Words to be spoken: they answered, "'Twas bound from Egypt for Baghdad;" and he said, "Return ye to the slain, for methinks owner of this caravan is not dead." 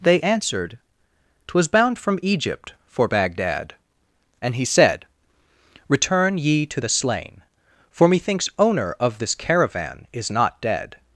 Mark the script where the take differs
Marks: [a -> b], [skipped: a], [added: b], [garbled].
they answered, "'Twas bound from Egypt for Baghdad;" and he said, "Return ye to the slain, for methinks owner of this caravan is not dead."